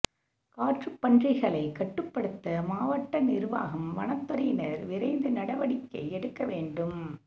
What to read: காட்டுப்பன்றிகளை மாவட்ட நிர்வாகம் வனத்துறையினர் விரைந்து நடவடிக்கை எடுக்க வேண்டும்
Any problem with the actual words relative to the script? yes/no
yes